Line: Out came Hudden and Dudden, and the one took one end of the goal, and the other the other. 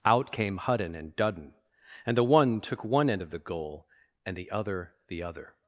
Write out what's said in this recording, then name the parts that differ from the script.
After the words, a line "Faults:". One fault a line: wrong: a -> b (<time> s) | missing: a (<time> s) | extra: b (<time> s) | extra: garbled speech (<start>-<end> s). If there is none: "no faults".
Out came Hudden and Dudden, and the one took one end of the goal, and the other the other.
Faults:
no faults